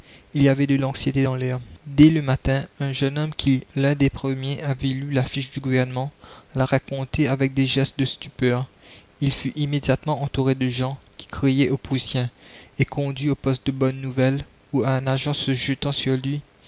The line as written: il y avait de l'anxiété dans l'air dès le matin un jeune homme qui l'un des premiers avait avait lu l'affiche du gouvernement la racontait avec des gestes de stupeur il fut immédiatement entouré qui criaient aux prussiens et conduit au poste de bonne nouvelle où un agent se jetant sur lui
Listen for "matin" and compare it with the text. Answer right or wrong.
right